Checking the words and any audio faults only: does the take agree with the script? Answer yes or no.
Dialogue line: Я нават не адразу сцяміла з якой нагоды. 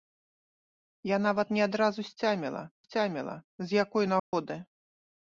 no